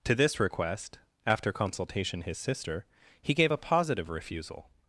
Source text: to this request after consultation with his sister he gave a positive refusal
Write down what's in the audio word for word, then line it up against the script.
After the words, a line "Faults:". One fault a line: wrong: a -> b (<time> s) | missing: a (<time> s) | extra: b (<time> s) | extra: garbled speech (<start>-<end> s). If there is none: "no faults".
to this request after consultation his sister he gave a positive refusal
Faults:
missing: with (2.2 s)